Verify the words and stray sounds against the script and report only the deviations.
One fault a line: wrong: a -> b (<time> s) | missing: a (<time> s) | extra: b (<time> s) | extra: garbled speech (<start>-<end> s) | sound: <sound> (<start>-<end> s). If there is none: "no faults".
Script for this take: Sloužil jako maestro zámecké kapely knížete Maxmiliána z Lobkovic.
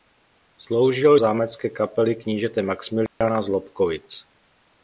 missing: jako maestro (1.2 s)
sound: dropout (3.1-3.2 s)